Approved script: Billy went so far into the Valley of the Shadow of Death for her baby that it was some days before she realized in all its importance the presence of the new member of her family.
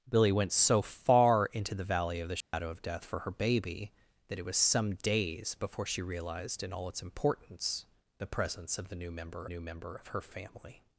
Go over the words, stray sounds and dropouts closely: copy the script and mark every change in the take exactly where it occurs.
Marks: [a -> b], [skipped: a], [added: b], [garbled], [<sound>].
Billy went so far into the Valley of the Shadow [dropout] of Death for her baby that it was some days before she realized in all its importance the presence of the new member [added: new member] of her family.